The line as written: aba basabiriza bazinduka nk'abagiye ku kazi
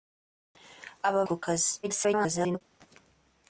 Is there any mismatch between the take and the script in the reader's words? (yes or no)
yes